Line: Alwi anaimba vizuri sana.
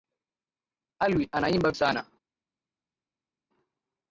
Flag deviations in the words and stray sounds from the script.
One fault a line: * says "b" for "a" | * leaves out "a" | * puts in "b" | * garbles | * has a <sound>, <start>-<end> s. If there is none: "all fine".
* leaves out "vizuri"